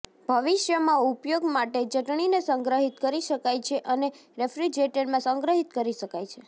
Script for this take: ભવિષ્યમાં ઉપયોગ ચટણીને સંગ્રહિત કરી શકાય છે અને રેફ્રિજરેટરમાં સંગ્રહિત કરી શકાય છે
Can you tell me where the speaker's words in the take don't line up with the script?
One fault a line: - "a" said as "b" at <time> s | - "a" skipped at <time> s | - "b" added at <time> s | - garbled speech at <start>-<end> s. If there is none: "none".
- "માટે" added at 1.5 s